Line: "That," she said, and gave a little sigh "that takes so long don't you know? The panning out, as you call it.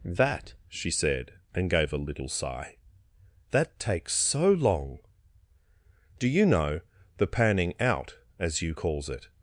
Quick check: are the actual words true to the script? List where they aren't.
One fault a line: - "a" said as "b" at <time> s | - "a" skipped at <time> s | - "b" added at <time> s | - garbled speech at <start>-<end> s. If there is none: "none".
- "don't" said as "do" at 6.2 s
- "call" said as "calls" at 8.7 s